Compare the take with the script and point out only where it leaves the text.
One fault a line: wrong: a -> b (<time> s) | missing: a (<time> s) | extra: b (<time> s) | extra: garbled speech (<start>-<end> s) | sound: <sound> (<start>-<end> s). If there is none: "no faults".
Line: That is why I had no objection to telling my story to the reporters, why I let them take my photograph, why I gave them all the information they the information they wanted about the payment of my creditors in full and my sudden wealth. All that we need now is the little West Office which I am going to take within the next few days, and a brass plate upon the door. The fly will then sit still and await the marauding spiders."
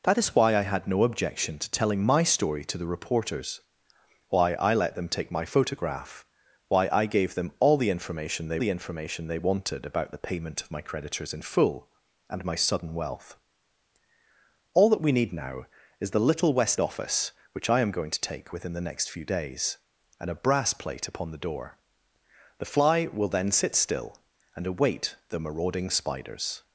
no faults